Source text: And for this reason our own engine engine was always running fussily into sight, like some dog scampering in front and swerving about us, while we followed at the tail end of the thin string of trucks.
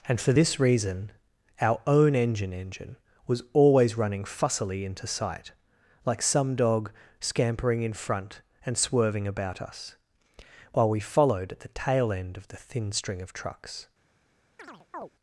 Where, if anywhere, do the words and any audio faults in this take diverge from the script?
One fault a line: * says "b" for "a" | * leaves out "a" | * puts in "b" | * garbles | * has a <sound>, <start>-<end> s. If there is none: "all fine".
* has a chirp, 14.6-15.1 s